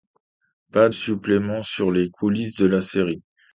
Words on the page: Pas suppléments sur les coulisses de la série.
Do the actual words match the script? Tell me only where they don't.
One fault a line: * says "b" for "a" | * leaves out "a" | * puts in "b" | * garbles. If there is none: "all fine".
all fine